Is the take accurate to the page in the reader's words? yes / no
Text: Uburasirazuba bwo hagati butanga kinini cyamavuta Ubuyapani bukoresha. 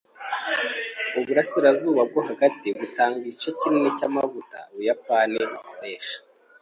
no